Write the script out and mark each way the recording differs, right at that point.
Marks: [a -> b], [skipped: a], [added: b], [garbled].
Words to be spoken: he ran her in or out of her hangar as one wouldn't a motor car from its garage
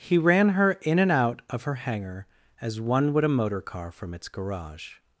he ran her in [or -> and] out of her hangar as one [wouldn't -> would] a motor car from its garage